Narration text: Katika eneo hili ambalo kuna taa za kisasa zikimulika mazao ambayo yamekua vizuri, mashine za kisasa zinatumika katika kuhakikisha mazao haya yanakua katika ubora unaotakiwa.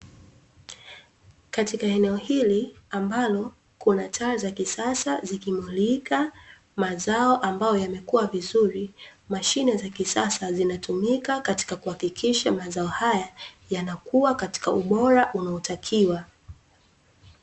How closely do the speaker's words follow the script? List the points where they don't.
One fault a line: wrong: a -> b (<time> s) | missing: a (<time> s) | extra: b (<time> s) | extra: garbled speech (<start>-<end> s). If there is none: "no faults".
no faults